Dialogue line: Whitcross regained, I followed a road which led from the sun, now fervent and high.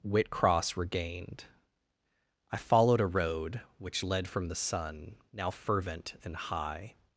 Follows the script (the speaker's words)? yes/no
yes